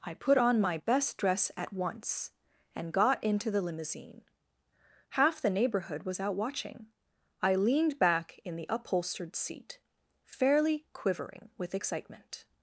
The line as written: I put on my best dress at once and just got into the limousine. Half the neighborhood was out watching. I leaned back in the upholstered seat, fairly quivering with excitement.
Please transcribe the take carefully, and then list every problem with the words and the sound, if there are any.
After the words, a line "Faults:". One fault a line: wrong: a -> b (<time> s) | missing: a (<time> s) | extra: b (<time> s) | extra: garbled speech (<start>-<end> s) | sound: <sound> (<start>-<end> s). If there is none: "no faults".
I put on my best dress at once and got into the limousine. Half the neighborhood was out watching. I leaned back in the upholstered seat, fairly quivering with excitement.
Faults:
missing: just (2.9 s)